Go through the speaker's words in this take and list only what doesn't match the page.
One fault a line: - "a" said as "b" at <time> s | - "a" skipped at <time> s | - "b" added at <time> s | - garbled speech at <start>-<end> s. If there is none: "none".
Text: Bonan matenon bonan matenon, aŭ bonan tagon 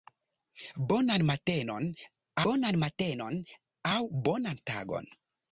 none